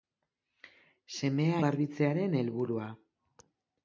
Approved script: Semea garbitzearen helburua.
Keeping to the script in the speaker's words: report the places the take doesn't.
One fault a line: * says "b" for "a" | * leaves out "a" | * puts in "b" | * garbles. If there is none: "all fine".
all fine